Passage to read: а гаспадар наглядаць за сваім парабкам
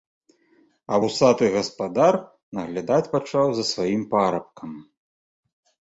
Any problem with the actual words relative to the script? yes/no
yes